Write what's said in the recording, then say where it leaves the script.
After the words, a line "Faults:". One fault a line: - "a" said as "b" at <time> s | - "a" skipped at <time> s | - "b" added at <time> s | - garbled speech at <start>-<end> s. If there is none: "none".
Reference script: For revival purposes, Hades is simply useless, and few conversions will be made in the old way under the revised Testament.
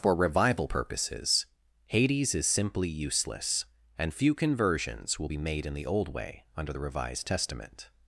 For revival purposes, Hades is simply useless, and few conversions will be made in the old way under the revised Testament.
Faults:
none